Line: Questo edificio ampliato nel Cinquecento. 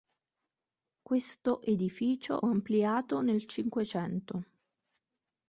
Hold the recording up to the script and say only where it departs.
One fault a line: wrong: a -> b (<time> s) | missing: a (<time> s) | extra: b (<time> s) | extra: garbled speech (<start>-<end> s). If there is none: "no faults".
no faults